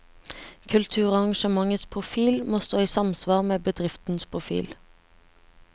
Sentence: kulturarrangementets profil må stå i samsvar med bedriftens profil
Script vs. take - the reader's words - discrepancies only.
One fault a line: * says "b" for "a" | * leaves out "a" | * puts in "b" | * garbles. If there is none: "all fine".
all fine